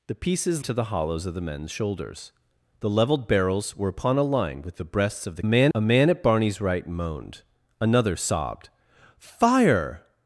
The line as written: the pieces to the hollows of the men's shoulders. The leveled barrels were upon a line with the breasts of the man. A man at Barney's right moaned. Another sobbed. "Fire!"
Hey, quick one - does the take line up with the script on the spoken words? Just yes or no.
yes